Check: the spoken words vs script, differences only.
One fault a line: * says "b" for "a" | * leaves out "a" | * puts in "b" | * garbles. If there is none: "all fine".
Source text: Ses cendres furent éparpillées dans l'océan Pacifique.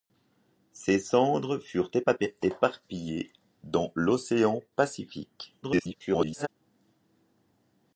* garbles